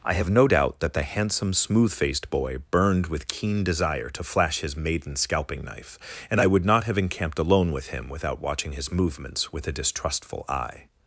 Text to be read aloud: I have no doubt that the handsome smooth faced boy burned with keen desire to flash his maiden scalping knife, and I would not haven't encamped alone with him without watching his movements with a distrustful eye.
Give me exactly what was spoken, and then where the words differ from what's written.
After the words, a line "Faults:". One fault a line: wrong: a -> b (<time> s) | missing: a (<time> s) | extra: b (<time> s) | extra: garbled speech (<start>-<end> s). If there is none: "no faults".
I have no doubt that the handsome smooth faced boy burned with keen desire to flash his maiden scalping knife, and I would not have encamped alone with him without watching his movements with a distrustful eye.
Faults:
wrong: haven't -> have (6.8 s)